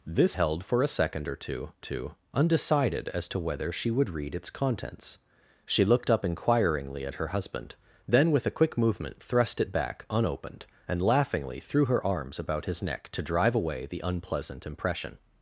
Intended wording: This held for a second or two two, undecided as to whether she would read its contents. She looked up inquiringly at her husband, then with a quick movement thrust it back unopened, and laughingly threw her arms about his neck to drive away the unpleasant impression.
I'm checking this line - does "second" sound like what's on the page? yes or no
yes